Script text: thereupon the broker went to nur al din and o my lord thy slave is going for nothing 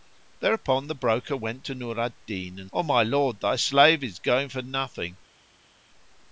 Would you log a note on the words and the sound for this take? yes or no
no